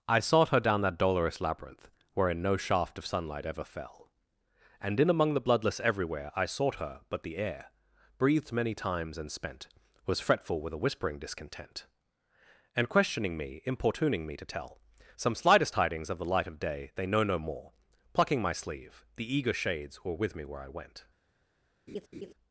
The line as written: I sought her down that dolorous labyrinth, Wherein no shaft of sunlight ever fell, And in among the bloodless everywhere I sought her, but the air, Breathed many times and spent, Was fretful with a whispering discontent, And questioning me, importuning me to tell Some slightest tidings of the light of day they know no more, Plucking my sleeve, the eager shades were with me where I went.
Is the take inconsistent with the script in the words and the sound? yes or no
yes